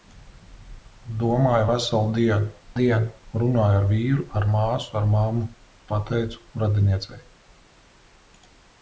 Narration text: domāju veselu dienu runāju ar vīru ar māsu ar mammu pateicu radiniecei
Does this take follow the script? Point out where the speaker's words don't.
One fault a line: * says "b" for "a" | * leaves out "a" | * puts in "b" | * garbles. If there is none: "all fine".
* puts in "dienu"